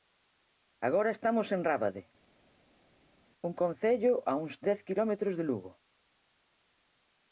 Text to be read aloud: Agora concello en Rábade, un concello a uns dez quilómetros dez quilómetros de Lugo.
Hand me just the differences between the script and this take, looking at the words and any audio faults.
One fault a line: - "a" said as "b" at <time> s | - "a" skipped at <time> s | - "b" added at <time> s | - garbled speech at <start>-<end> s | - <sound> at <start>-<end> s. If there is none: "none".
- "concello" said as "estamos" at 1.2 s
- "dez quilómetros" skipped at 5.3 s